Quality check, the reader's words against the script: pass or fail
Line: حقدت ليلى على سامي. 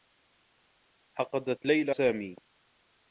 fail